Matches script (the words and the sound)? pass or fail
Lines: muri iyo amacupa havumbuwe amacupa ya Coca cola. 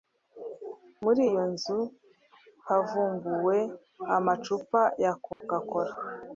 fail